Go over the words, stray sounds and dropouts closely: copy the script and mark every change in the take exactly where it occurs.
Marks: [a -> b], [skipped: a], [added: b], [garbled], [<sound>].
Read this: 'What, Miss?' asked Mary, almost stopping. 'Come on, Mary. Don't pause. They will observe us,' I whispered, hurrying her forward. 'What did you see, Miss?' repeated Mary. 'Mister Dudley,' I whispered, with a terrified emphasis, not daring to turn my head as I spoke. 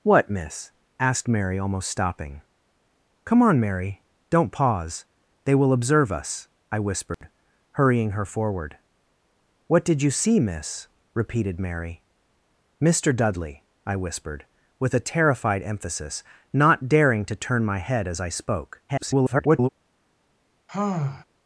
'What, Miss?' asked Mary, almost stopping. 'Come on, Mary. Don't pause. They will observe us,' I whispered, [dropout] hurrying her forward. 'What did you see, Miss?' repeated Mary. 'Mister Dudley,' I whispered, with a terrified emphasis, not daring to turn my head as I spoke. [garbled] [sigh]